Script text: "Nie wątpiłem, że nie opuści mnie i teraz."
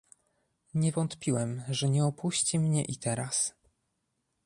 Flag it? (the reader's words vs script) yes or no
no